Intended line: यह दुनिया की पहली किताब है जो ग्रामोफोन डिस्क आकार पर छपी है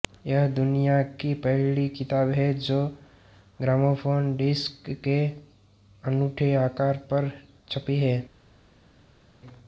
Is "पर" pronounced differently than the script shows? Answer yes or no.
no